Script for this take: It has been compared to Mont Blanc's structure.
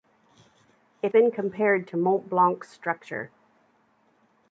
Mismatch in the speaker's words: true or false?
true